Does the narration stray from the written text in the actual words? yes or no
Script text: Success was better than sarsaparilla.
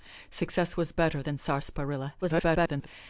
yes